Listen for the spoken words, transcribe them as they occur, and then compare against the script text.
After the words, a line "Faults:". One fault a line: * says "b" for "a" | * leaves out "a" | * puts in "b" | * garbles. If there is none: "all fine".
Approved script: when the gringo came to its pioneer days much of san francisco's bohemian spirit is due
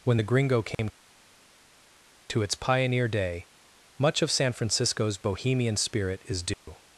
when the gringo came to its pioneer day much of san francisco's bohemian spirit is due
Faults:
* says "day" for "days"